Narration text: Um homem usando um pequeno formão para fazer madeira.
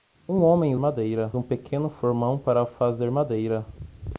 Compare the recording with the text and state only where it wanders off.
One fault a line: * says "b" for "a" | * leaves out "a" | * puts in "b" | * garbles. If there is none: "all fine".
* says "madeira" for "usando"